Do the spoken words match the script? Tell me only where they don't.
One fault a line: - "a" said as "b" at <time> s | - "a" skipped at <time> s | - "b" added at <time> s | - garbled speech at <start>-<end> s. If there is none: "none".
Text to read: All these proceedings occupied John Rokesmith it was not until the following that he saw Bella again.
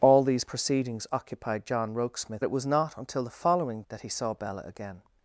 none